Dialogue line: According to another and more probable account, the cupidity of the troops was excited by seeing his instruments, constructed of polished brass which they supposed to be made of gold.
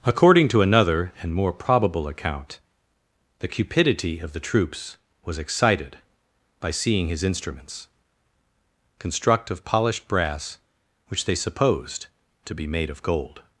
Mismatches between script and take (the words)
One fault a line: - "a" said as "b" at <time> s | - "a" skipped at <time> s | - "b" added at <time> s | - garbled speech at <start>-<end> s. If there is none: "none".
- "constructed" said as "construct" at 9.0 s